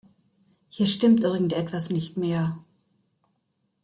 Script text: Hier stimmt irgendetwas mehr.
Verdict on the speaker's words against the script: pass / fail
fail